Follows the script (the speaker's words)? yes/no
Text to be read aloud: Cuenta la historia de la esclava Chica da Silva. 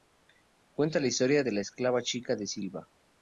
yes